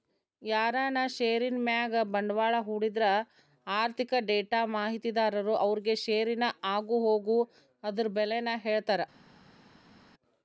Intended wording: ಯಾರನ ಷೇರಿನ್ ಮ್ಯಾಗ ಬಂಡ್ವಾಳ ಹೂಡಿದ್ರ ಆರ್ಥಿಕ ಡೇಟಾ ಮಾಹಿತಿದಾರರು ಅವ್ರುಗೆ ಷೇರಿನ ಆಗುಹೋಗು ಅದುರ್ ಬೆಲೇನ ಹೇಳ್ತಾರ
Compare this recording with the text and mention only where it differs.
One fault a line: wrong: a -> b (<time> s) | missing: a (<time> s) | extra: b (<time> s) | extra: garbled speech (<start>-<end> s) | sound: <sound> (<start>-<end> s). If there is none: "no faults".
no faults